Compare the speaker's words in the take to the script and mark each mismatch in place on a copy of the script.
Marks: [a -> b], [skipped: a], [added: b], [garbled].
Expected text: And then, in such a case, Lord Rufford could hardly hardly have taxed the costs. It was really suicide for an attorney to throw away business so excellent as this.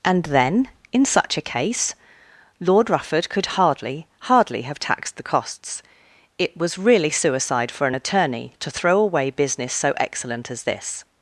And then, in such a case, Lord Rufford could hardly hardly have taxed the costs. It was really suicide for an attorney to throw away business so excellent as this.